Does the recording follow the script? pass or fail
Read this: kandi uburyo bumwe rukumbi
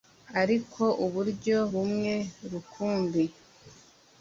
fail